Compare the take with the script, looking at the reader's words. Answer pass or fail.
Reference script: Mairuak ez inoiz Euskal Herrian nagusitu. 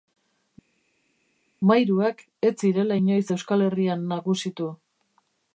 fail